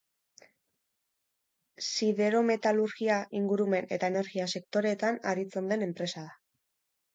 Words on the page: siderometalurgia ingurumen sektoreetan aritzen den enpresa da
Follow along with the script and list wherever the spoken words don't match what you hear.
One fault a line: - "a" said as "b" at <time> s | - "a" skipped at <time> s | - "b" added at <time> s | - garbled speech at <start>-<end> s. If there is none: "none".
- "eta energia" added at 4.0 s